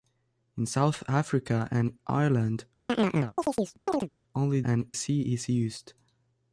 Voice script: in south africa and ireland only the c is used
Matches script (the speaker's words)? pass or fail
fail